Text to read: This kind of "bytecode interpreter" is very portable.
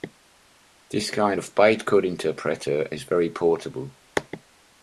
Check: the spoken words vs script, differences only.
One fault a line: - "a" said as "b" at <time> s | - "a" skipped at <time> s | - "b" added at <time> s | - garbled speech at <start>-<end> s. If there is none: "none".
none